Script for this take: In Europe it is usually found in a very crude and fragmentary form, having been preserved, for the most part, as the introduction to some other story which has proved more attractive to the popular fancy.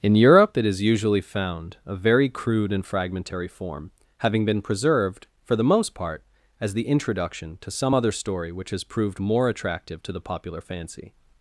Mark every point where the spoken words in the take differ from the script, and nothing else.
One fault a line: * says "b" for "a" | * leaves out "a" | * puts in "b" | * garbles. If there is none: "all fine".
* leaves out "in"